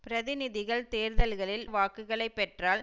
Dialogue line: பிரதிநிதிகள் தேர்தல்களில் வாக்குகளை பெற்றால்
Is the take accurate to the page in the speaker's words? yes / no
yes